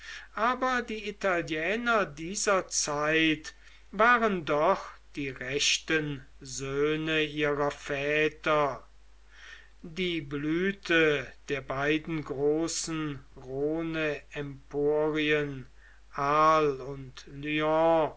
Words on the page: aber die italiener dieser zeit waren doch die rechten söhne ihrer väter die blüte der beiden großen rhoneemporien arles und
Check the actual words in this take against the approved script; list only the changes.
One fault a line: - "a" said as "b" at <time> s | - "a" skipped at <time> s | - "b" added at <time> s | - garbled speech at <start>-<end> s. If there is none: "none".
none